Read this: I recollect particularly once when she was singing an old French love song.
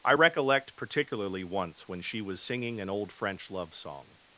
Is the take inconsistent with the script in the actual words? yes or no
no